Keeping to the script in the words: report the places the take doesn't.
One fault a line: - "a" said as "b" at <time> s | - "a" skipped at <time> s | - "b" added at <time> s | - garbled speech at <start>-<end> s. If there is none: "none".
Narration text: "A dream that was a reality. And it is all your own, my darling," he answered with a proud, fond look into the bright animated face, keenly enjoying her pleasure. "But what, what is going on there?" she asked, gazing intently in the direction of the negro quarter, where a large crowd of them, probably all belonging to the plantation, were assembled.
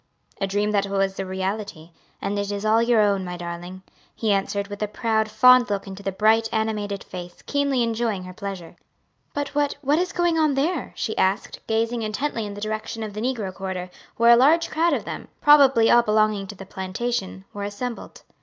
none